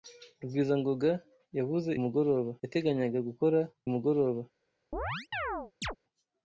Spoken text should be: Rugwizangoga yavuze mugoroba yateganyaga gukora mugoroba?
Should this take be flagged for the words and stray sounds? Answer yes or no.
yes